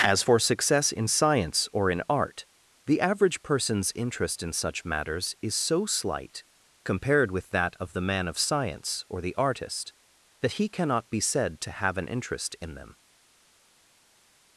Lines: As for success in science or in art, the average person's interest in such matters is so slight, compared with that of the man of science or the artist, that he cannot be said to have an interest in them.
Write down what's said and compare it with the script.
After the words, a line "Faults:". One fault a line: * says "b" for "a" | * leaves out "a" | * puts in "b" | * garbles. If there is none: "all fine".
As for success in science or in art, the average person's interest in such matters is so slight, compared with that of the man of science or the artist, that he cannot be said to have an interest in them.
Faults:
all fine